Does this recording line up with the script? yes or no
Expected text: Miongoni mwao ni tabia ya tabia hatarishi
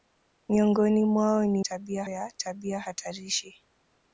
yes